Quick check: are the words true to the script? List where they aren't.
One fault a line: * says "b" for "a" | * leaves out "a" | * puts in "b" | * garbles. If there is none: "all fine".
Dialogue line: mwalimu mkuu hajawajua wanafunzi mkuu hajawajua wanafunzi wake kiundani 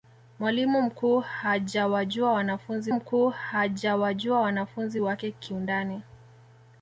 all fine